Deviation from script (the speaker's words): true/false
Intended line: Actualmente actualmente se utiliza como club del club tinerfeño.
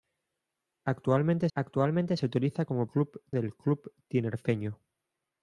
false